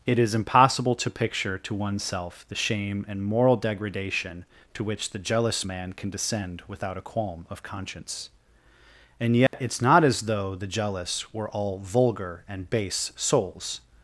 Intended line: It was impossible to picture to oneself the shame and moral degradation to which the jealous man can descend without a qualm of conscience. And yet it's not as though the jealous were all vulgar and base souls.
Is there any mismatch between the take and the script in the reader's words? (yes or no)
yes